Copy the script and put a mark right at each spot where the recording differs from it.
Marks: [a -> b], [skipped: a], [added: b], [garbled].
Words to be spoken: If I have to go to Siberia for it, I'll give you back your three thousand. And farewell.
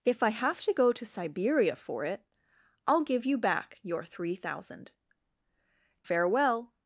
If I have to go to Siberia for it, I'll give you back your three thousand. [skipped: And] farewell.